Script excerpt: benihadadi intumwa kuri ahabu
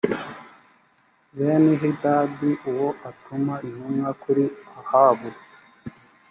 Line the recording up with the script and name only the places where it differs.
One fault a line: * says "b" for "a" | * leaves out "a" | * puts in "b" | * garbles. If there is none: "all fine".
* puts in "uwo atuma"